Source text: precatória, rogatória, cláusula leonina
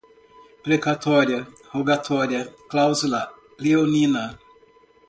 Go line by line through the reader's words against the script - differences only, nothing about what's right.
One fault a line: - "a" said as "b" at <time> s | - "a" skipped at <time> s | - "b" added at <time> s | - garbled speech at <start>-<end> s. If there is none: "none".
none